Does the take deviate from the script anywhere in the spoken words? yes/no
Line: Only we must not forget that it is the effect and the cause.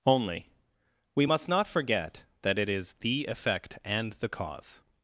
no